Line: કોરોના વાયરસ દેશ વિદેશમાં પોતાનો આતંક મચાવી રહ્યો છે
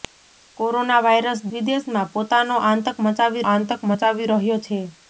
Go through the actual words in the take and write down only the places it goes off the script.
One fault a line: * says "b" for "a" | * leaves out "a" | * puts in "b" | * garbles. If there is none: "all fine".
* leaves out "દેશ"
* puts in "આતંક મચાવી"